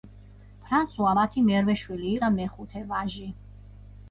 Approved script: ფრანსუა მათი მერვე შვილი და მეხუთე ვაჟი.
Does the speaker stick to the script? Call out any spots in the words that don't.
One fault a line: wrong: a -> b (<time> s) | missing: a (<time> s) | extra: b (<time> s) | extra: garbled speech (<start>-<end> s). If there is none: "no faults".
no faults